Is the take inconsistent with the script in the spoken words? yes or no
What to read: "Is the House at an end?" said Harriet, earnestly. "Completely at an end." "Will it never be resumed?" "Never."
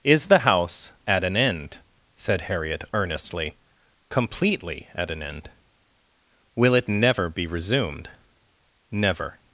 no